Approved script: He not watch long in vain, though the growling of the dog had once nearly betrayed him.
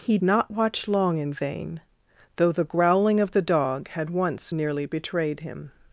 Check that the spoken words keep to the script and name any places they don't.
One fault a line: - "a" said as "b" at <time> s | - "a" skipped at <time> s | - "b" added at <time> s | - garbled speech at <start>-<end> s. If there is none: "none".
none